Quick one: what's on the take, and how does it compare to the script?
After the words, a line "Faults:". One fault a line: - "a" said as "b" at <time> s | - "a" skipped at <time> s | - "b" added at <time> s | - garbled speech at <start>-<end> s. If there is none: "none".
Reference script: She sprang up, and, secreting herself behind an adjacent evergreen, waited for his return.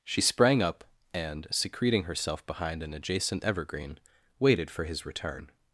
She sprang up, and, secreting herself behind an adjacent evergreen, waited for his return.
Faults:
none